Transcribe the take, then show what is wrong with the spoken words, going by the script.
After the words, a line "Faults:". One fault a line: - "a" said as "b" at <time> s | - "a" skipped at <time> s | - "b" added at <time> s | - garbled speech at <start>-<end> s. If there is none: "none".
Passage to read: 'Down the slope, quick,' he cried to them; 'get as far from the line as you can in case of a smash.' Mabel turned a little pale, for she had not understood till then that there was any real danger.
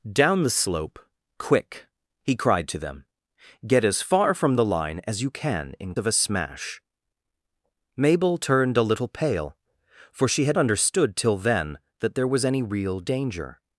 'Down the slope, quick,' he cried to them; 'get as far from the line as you can in of a smash.' Mabel turned a little pale, for she had understood till then that there was any real danger.
Faults:
- "case" skipped at 5.9 s
- "not" skipped at 10.6 s